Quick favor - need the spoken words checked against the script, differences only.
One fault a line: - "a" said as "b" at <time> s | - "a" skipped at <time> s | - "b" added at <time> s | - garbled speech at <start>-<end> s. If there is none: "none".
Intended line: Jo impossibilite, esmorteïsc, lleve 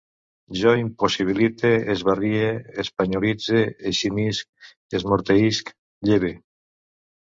- "esbarrie espanyolitze eximisc" added at 2.0 s